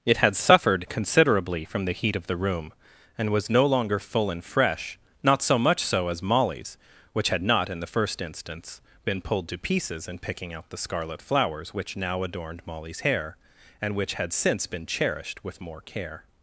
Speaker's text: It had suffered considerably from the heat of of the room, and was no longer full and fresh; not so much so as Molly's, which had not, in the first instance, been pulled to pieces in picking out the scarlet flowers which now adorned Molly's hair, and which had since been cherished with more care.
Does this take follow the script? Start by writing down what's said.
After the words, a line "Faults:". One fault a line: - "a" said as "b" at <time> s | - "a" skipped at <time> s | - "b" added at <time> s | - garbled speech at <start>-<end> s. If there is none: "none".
It had suffered considerably from the heat of the room, and was no longer full and fresh; not so much so as Molly's, which had not, in the first instance, been pulled to pieces in picking out the scarlet flowers which now adorned Molly's hair, and which had since been cherished with more care.
Faults:
- "of" skipped at 2.3 s